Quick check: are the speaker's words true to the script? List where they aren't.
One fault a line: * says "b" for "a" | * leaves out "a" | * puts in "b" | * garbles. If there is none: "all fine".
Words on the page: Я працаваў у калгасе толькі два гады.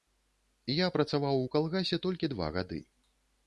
all fine